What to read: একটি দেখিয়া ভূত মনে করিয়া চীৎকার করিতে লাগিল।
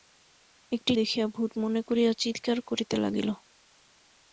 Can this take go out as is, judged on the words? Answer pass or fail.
pass